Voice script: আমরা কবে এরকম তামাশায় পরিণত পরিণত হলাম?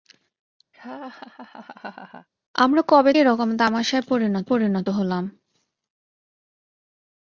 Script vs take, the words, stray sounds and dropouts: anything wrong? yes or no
yes